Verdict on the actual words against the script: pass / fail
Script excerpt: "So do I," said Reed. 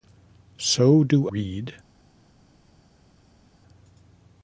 fail